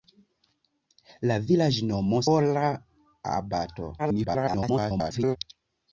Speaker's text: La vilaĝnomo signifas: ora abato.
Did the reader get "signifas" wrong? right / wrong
wrong